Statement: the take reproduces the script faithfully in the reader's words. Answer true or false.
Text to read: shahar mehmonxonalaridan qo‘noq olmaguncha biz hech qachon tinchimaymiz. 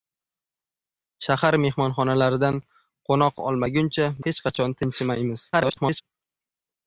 false